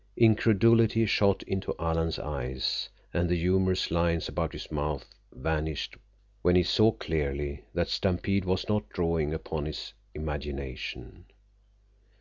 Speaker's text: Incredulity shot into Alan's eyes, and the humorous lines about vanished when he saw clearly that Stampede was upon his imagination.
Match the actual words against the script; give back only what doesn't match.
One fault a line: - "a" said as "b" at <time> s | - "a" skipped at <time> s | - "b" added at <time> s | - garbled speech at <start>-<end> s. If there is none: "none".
- "his mouth" added at 4.5 s
- "not drawing" added at 8.7 s